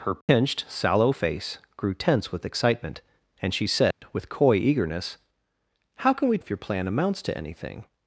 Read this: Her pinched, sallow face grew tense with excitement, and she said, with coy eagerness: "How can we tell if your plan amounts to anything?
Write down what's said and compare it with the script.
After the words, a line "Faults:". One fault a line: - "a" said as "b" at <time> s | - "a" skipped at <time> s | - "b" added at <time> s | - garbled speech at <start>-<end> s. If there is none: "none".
Her pinched, sallow face grew tense with excitement, and she said, with coy eagerness: "How can we if your plan amounts to anything?
Faults:
- "tell" skipped at 6.4 s